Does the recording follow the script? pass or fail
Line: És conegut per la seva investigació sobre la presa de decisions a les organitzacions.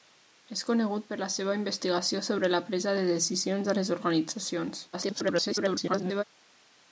fail